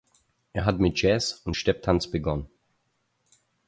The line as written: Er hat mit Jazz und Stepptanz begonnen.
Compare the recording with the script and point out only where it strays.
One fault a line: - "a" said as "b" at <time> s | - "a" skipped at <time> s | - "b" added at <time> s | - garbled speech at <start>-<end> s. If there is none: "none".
none